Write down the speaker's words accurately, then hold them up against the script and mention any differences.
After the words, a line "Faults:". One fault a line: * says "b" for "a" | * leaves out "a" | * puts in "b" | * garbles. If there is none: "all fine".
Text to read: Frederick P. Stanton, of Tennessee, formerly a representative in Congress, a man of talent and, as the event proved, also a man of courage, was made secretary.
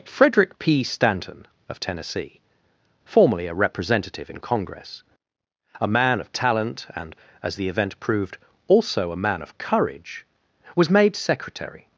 Frederick P. Stanton, of Tennessee, formerly a representative in Congress, a man of talent and, as the event proved, also a man of courage, was made secretary.
Faults:
all fine